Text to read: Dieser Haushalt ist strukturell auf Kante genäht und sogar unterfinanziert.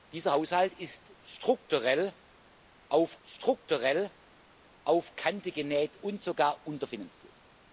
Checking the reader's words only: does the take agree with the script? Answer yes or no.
no